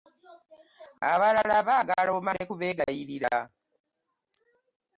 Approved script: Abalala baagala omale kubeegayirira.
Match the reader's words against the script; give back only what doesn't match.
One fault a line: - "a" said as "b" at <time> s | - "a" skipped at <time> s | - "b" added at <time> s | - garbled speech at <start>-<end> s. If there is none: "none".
none